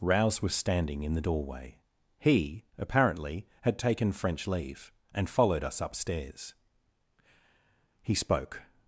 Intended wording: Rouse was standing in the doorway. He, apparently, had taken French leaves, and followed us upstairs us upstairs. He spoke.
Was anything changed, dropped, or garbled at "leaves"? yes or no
yes